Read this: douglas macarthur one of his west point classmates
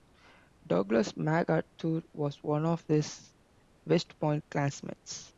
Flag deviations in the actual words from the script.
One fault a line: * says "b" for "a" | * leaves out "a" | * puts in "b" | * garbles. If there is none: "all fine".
* puts in "was"